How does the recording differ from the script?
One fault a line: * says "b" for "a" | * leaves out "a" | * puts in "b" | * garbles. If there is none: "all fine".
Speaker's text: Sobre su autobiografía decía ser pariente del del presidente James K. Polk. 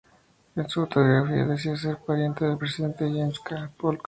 * says "En" for "Sobre"
* leaves out "del"